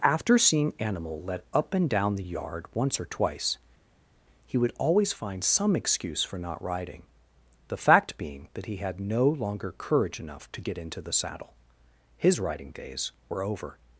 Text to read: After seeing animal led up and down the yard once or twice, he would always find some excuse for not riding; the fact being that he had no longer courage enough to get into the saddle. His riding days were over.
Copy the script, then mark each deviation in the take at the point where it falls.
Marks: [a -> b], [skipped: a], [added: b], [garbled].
After seeing animal led up and down the yard once or twice, he would always find some excuse for not riding; the fact being that he had no longer courage enough to get into the saddle. His riding days were over.